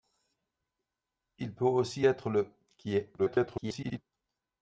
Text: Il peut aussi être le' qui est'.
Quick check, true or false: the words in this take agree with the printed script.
false